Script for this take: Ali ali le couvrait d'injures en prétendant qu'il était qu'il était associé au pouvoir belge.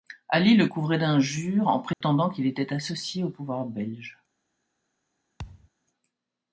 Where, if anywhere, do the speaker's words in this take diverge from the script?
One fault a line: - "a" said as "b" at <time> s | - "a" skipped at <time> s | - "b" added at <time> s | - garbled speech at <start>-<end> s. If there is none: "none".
- "ali" skipped at 0.6 s
- "qu'il était" skipped at 2.7 s